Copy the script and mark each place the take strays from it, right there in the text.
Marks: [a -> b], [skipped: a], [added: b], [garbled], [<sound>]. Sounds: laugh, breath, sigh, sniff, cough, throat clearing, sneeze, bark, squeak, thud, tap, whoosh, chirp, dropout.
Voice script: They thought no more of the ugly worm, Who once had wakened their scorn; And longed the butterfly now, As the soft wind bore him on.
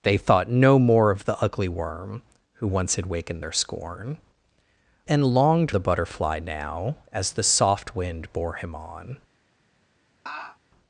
They thought no more of the ugly worm, Who once had wakened their scorn; And longed the butterfly now, As the soft wind bore him on. [laugh]